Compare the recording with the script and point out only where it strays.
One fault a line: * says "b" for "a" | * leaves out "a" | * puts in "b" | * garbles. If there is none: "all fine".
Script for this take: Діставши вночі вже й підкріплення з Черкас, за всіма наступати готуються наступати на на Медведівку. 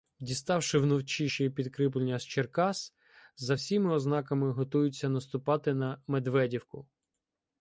* says "ще" for "вже"
* says "ознаками" for "наступати"
* leaves out "на"